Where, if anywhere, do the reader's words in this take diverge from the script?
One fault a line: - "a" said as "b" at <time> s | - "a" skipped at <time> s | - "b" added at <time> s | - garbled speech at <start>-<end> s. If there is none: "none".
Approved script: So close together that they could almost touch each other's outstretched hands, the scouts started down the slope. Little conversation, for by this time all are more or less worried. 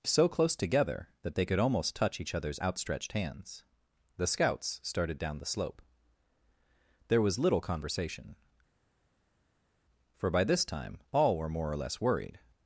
- "There was" added at 7.1 s
- "are" said as "were" at 11.4 s